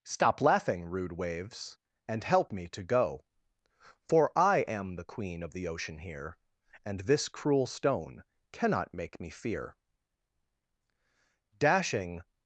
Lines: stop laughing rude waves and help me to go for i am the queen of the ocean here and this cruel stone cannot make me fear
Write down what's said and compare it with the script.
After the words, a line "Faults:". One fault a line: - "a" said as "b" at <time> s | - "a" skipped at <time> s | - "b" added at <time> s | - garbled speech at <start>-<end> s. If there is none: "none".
stop laughing rude waves and help me to go for i am the queen of the ocean here and this cruel stone cannot make me fear dashing
Faults:
- "dashing" added at 11.6 s